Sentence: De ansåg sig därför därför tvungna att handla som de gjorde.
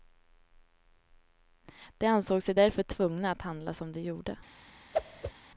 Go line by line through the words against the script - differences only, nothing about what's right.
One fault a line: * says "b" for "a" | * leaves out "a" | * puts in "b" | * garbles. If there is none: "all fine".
* leaves out "därför"